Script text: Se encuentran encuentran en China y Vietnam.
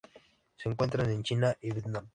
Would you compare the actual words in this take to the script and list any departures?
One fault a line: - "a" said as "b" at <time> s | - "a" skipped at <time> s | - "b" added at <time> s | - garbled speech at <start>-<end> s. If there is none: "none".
- "encuentran" skipped at 1.1 s